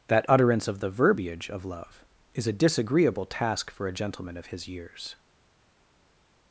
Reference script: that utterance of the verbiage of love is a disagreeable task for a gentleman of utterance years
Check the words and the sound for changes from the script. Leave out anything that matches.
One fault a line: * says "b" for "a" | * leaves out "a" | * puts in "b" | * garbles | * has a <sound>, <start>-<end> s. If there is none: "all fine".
* says "his" for "utterance"